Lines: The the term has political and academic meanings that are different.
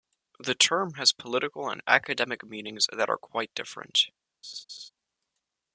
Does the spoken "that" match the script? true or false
true